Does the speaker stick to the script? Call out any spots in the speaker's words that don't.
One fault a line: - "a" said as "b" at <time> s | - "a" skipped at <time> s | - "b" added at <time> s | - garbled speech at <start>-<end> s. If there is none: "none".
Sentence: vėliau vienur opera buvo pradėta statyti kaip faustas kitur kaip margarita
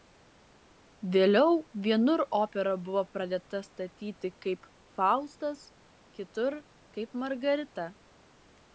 none